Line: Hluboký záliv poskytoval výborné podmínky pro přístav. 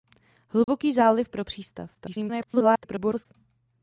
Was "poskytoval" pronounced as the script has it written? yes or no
no